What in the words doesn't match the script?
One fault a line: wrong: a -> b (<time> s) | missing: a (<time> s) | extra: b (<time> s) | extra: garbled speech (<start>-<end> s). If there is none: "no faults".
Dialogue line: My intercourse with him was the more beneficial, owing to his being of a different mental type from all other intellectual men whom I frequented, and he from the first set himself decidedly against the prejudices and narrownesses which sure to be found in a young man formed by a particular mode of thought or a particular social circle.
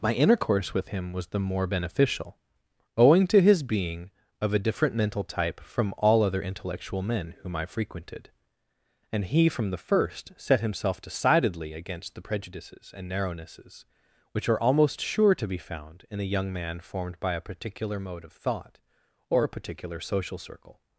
extra: are almost (14.5 s)